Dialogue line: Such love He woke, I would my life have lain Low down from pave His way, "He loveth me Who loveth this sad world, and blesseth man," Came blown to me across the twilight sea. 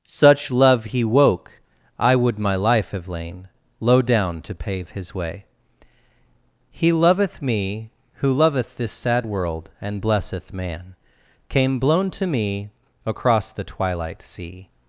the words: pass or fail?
fail